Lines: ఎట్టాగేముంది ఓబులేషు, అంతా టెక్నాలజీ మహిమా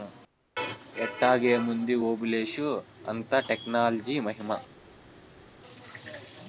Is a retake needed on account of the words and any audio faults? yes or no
no